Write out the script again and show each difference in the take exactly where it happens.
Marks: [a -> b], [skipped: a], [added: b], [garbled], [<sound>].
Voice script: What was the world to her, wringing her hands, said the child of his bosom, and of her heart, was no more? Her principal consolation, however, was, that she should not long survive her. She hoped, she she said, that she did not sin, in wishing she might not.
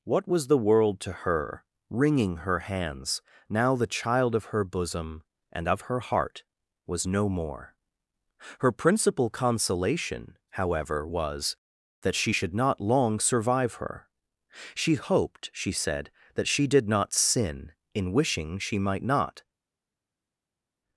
What was the world to her, wringing her hands, [said -> now] the child of [his -> her] bosom, and of her heart, was no more? Her principal consolation, however, was, that she should not long survive her. She hoped, she [skipped: she] said, that she did not sin, in wishing she might not.